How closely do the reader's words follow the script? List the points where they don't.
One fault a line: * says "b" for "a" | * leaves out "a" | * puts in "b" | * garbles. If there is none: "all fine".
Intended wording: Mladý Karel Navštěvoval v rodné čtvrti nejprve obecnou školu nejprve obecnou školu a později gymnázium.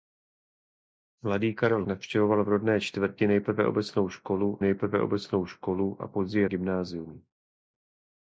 all fine